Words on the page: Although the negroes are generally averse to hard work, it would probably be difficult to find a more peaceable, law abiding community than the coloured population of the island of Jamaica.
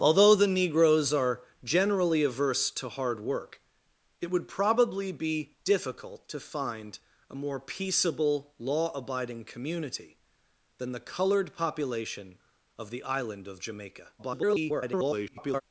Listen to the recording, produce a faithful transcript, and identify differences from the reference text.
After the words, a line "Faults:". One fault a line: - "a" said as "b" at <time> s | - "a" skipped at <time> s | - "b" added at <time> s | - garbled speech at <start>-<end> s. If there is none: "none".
Although the negroes are generally averse to hard work, it would probably be difficult to find a more peaceable, law abiding community than the coloured population of the island of Jamaica. [garbled]
Faults:
- garbled speech at 14.2-15.6 s